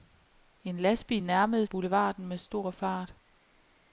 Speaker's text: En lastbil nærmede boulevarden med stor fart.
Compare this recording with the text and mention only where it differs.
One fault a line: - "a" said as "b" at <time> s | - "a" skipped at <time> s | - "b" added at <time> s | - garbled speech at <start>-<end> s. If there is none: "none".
none